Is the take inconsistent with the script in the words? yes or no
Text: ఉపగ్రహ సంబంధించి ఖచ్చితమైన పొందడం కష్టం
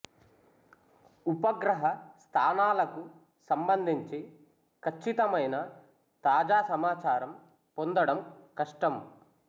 yes